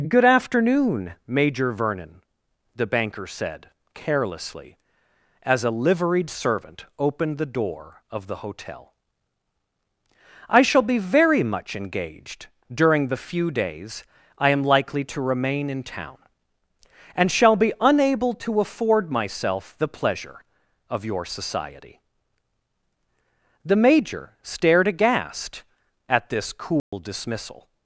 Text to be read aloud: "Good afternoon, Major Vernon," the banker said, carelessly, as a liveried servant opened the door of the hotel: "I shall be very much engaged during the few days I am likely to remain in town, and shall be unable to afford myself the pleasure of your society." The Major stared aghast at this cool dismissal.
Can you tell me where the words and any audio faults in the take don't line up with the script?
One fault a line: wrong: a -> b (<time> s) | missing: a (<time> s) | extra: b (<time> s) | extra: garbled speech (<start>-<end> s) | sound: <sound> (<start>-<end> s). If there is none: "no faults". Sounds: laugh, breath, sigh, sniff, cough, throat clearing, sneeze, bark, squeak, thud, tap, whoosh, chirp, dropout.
sound: dropout (26.8-26.9 s)